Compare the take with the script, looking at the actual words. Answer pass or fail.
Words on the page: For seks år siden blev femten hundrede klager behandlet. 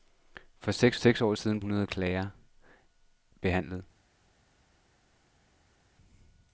fail